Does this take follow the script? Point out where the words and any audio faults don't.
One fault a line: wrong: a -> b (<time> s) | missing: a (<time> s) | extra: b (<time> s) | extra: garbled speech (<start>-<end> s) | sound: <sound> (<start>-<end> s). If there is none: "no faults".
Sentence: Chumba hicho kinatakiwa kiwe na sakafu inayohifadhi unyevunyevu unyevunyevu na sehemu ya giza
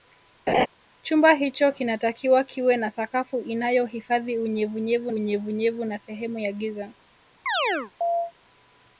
sound: laugh (0.5-0.7 s)
sound: chirp (7.5-8.3 s)